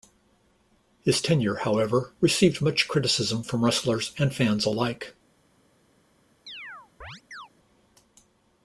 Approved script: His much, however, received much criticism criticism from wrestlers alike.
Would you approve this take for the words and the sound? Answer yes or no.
no